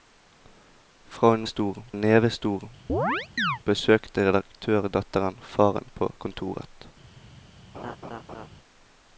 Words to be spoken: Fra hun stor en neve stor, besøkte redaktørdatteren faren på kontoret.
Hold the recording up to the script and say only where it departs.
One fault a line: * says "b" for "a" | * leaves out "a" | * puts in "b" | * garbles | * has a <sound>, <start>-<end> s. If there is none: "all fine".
* has a chirp, 2.9-3.6 s
* has a laugh, 7.7-8.5 s